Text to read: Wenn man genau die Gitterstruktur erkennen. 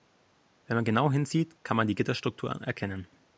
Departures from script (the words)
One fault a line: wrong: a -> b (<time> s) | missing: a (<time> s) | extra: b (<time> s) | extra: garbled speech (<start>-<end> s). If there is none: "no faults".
extra: hinsieht kann man (1.1 s)